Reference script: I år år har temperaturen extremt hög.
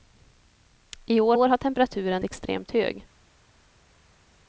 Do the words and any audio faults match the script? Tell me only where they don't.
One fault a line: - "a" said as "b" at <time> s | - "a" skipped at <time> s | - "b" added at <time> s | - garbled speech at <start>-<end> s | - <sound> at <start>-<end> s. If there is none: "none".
none